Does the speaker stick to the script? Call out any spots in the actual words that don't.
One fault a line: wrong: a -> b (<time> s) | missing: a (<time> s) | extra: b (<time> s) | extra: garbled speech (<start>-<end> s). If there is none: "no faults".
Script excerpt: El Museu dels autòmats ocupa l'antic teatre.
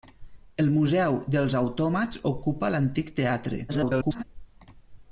extra: garbled speech (3.7-4.2 s)